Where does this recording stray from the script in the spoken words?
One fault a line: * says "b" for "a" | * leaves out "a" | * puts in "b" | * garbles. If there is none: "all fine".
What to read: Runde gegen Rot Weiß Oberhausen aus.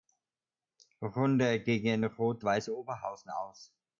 all fine